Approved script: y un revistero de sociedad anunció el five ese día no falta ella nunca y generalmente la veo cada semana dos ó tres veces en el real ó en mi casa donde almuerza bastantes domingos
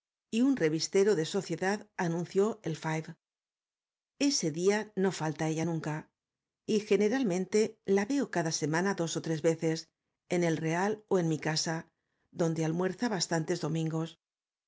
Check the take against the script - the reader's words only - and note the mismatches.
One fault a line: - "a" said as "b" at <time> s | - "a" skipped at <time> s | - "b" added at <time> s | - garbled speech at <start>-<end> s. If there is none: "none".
none